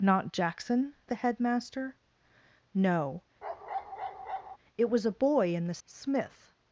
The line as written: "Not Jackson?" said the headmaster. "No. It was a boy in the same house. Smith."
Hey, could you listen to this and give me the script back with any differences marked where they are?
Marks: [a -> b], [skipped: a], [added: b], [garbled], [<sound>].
"Not Jackson?" [skipped: said] the headmaster. "No. [bark] It was a boy in the [skipped: same house.] Smith."